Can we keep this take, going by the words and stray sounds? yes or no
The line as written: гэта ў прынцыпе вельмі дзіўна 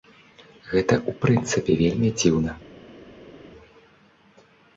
yes